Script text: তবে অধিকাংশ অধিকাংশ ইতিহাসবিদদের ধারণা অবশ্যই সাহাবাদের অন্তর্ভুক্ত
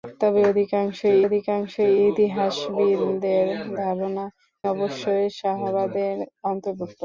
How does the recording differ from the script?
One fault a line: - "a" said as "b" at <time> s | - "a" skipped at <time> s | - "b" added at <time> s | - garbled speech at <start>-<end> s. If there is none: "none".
none